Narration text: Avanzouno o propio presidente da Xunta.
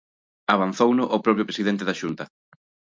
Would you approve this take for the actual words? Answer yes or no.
yes